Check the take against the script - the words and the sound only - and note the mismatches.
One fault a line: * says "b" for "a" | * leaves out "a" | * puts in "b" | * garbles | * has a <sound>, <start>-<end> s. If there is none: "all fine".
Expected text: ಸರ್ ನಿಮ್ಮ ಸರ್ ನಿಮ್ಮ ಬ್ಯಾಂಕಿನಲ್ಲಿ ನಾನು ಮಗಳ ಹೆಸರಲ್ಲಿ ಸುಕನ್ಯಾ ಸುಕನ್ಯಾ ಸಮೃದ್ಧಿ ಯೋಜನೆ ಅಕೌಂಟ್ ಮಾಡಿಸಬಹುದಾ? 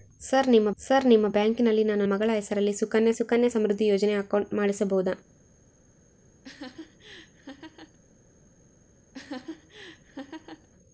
* has a laugh, 6.4-8.0 s
* has a laugh, 9.1-10.7 s